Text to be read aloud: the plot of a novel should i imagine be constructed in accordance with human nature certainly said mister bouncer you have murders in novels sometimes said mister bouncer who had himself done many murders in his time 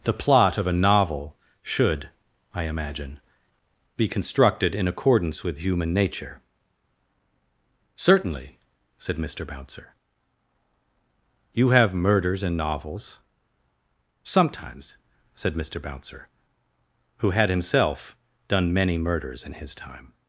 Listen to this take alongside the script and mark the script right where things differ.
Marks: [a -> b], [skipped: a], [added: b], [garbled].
the plot of a novel should i imagine be constructed in accordance with human nature certainly said mister bouncer you have murders in novels sometimes said mister bouncer who had himself done many murders in his time